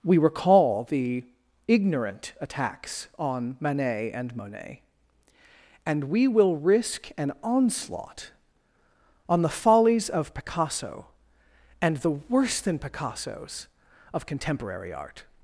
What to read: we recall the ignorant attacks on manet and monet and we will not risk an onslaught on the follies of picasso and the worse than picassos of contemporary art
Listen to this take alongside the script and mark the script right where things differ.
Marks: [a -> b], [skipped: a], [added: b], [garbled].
we recall the ignorant attacks on manet and monet and we will [skipped: not] risk an onslaught on the follies of picasso and the worse than picassos of contemporary art